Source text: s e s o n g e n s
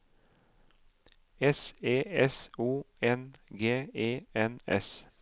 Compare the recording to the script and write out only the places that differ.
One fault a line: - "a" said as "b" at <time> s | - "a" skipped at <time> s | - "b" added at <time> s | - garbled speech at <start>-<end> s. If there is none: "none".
none